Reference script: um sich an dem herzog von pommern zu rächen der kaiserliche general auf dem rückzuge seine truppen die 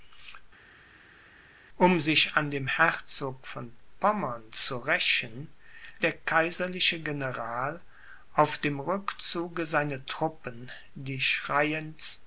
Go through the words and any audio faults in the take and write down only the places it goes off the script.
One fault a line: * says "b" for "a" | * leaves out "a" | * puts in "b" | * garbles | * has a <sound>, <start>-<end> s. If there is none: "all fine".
all fine